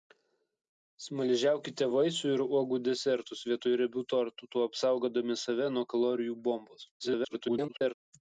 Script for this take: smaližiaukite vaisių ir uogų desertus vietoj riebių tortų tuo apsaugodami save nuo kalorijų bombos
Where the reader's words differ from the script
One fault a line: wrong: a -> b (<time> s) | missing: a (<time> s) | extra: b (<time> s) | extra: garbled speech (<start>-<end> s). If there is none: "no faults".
extra: garbled speech (7.0-7.9 s)